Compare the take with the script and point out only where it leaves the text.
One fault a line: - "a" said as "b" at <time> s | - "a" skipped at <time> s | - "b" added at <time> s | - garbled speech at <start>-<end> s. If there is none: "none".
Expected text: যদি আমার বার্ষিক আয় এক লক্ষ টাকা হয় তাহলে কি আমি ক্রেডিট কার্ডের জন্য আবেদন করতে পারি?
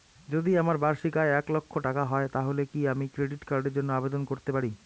none